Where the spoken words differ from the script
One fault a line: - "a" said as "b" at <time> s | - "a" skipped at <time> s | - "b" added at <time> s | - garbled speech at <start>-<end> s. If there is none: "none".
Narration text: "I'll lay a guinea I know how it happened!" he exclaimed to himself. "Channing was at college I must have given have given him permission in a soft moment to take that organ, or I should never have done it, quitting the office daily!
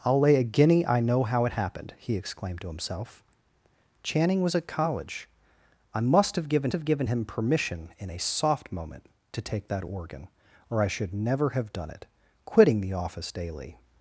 none